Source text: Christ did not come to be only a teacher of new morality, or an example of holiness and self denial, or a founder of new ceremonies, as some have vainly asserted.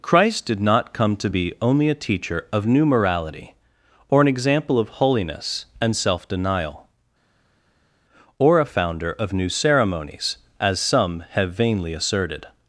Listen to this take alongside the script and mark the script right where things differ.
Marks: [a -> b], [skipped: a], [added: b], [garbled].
Christ did not come to be only a teacher of new morality, or an example of holiness and self denial, or a founder of new ceremonies, as some have vainly asserted.